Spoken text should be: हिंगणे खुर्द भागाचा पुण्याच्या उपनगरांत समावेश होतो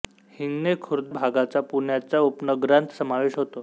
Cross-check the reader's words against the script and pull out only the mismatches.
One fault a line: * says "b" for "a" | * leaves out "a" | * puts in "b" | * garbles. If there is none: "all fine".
all fine